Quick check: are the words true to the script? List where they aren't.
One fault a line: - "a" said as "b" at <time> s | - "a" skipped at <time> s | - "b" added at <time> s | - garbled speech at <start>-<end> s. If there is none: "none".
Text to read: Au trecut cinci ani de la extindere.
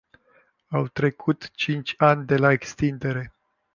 none